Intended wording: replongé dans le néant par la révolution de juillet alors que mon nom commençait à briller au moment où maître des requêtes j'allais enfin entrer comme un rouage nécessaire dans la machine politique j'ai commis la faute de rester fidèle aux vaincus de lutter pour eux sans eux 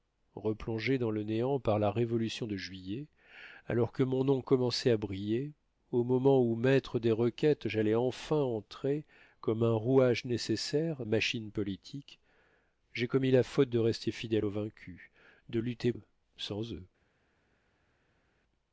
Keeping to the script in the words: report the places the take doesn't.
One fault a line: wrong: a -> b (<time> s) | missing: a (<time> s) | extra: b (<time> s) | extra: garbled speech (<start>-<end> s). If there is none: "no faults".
missing: dans la (11.1 s)
missing: pour (15.9 s)